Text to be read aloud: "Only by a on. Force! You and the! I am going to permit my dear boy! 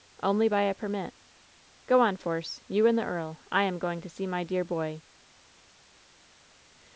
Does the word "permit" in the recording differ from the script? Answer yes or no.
yes